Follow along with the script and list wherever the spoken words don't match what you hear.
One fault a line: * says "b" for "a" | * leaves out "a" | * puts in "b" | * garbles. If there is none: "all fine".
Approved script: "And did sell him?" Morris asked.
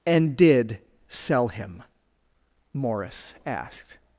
all fine